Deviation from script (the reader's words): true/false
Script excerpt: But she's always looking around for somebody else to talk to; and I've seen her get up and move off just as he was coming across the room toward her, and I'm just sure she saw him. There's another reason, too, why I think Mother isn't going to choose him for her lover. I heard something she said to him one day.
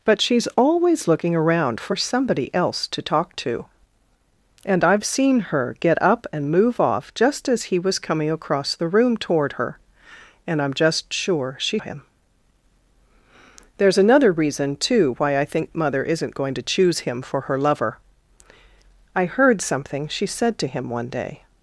true